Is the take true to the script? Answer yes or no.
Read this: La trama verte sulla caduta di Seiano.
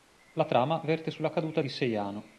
yes